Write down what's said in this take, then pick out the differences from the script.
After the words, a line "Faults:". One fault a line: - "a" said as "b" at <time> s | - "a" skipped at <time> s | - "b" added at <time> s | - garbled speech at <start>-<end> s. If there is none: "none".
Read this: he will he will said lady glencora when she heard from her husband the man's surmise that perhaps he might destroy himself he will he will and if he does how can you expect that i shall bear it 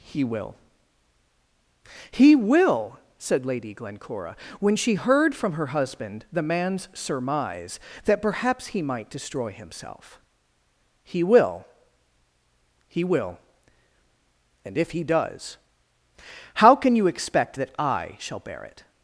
he will he will said lady glencora when she heard from her husband the man's surmise that perhaps he might destroy himself he will he will and if he does how can you expect that i shall bear it
Faults:
none